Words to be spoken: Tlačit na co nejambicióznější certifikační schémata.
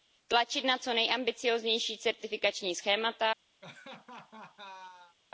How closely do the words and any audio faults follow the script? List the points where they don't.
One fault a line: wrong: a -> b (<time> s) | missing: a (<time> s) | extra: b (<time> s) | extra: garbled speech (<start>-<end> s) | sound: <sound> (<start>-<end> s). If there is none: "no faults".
sound: laugh (3.6-5.2 s)